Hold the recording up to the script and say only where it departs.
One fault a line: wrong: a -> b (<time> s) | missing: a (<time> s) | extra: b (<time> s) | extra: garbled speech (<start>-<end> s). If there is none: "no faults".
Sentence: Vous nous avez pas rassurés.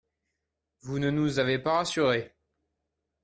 extra: ne (0.9 s)